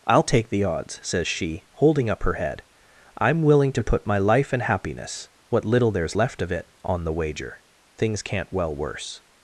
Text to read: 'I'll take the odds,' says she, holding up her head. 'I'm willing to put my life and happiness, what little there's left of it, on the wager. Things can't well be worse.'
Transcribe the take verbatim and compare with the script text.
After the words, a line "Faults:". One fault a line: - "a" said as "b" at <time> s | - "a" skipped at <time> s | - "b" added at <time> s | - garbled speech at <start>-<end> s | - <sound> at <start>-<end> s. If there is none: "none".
'I'll take the odds,' says she, holding up her head. 'I'm willing to put my life and happiness, what little there's left of it, on the wager. Things can't well worse.'
Faults:
- "be" skipped at 8.7 s